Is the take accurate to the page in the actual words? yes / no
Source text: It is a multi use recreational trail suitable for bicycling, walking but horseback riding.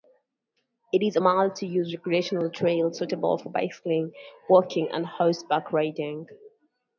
no